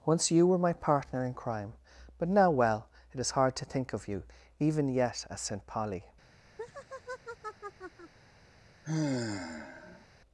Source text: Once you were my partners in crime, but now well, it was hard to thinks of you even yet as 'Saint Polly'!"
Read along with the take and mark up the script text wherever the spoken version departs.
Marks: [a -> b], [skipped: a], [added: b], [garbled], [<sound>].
Once you were my [partners -> partner] in crime, but now well, it [was -> is] hard to [thinks -> think] of you even yet as 'Saint Polly'!" [laugh] [sigh]